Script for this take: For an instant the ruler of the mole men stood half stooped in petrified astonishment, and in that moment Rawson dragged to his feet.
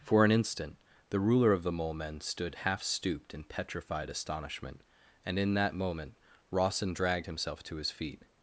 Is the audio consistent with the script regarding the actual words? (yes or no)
no